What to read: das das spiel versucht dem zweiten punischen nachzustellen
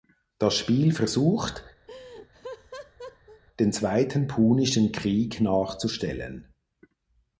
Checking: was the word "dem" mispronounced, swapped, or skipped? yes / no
yes